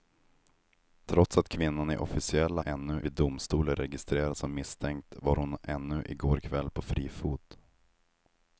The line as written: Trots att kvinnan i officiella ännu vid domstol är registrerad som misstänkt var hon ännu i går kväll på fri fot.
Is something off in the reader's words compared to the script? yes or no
no